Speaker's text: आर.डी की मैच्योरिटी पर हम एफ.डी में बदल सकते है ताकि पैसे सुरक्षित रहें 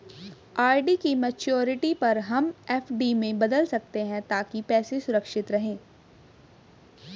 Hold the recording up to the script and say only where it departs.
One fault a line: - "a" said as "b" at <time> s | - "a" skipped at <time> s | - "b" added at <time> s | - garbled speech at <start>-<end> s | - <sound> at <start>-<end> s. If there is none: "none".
none